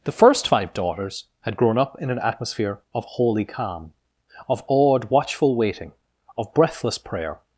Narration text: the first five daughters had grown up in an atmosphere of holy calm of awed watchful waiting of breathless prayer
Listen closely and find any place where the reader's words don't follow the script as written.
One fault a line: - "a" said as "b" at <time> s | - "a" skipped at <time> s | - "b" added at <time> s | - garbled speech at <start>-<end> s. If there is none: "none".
none